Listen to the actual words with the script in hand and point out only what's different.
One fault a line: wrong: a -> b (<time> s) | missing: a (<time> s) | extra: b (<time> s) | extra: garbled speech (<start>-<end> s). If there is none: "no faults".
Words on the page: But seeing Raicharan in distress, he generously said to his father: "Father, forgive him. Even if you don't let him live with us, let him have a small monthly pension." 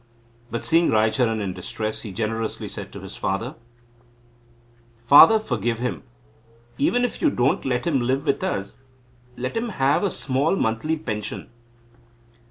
no faults